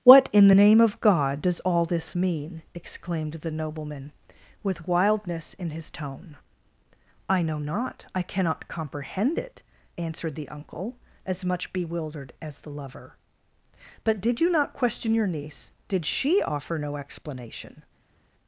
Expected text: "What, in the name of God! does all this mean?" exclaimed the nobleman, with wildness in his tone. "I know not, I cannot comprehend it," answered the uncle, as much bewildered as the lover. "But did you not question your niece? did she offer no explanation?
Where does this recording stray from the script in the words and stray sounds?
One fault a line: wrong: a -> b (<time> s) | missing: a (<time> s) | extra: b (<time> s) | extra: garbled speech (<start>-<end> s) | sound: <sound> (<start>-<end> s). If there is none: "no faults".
no faults